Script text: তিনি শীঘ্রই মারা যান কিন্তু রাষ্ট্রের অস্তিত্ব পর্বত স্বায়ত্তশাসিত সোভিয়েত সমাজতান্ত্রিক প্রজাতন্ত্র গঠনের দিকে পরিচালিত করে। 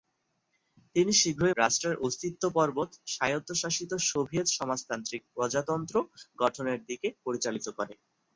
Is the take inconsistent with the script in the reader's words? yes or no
yes